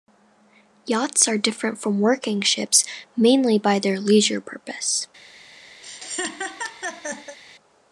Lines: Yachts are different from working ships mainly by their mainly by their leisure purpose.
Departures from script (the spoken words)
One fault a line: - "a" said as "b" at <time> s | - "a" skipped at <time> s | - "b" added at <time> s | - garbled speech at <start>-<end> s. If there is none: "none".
- "mainly by their" skipped at 4.0 s